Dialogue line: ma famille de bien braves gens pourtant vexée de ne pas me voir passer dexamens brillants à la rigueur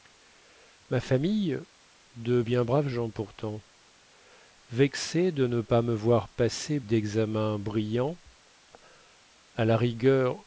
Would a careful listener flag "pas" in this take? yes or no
no